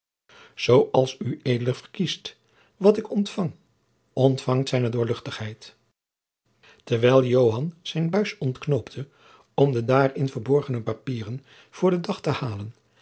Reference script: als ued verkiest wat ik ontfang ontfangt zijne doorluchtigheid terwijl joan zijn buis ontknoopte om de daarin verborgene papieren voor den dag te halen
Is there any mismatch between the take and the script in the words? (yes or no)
no